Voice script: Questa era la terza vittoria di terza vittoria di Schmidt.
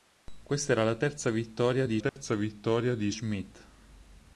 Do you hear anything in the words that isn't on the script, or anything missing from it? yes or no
no